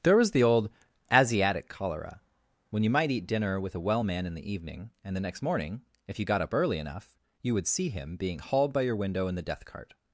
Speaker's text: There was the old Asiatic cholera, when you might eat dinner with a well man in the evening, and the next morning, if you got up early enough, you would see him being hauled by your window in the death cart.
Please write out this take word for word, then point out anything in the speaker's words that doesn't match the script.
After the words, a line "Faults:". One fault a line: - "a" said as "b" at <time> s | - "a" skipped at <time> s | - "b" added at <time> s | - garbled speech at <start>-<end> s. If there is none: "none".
There was the old Asiatic cholera, when you might eat dinner with a well man in the evening, and the next morning, if you got up early enough, you would see him being hauled by your window in the death cart.
Faults:
none